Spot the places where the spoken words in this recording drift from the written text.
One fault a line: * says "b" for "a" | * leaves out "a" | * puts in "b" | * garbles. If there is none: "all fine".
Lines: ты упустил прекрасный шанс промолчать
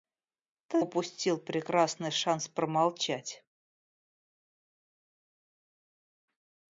all fine